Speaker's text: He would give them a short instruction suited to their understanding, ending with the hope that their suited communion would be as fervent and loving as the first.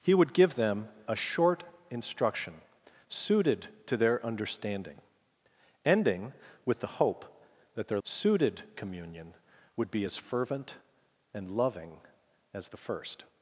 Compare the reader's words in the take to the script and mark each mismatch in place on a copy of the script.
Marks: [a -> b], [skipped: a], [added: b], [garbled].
He would give them a short instruction suited to their understanding, ending with the hope that their suited communion would be as fervent and loving as the first.